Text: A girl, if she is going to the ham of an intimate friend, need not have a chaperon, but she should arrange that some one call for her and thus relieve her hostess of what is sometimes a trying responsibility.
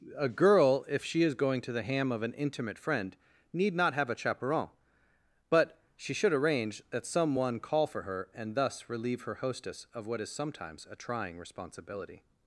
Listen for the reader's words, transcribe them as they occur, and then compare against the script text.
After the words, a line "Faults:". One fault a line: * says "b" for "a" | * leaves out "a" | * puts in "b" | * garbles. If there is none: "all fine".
A girl, if she is going to the ham of an intimate friend, need not have a chaperon, but she should arrange that some one call for her and thus relieve her hostess of what is sometimes a trying responsibility.
Faults:
all fine